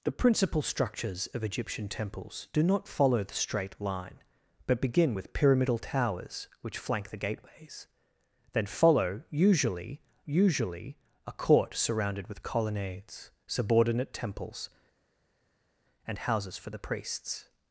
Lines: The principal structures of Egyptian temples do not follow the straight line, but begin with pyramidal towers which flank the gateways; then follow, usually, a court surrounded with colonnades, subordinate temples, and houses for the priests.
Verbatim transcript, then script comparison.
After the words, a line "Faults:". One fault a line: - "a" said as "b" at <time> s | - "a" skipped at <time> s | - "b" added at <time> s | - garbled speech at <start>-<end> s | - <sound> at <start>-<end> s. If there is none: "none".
The principal structures of Egyptian temples do not follow the straight line, but begin with pyramidal towers which flank the gateways; then follow, usually usually, a court surrounded with colonnades, subordinate temples, and houses for the priests.
Faults:
- "usually" added at 10.2 s